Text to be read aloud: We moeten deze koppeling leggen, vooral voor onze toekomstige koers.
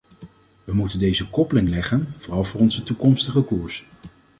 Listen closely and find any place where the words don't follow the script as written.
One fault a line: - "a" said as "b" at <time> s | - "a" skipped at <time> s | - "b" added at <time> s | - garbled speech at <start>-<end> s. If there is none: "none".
none